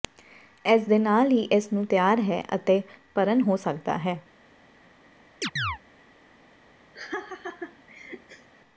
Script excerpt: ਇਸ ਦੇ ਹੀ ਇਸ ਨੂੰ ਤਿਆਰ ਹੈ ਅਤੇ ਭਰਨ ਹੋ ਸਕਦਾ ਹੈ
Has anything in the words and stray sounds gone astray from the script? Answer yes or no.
yes